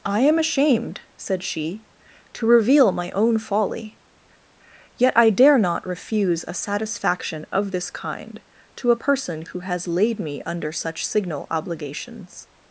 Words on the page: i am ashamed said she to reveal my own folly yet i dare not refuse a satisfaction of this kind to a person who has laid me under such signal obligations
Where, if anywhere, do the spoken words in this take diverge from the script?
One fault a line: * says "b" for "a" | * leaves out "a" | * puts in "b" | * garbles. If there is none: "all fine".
all fine